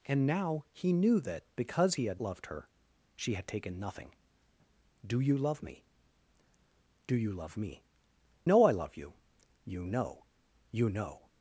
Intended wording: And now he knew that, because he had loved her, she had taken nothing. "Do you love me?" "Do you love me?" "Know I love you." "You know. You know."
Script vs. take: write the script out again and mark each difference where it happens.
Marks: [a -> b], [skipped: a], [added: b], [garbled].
And now he knew that, because he had loved her, she had taken nothing. "Do you love me?" "Do you love me?" "Know I love you." "You know. You know."